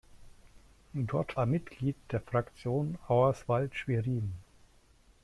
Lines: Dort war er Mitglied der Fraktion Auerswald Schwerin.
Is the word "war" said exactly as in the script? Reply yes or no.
no